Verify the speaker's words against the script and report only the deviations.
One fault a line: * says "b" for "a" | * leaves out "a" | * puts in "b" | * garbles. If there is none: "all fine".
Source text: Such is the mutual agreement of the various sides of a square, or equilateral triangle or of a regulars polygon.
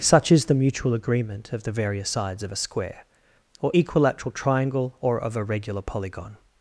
* says "regular" for "regulars"